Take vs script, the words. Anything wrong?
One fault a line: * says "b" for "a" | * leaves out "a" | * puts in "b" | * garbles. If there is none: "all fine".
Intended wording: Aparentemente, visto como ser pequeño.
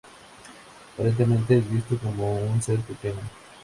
* puts in "es"
* puts in "un"